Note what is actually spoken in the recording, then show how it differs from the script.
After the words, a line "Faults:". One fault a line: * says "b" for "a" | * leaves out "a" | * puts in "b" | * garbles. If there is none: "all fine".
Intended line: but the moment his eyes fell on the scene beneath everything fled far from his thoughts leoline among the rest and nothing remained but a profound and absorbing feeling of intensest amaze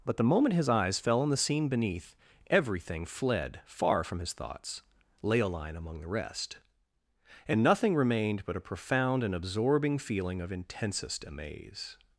but the moment his eyes fell on the scene beneath everything fled far from his thoughts leoline among the rest and nothing remained but a profound and absorbing feeling of intensest amaze
Faults:
all fine